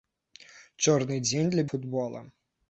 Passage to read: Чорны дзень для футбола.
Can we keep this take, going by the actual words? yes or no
yes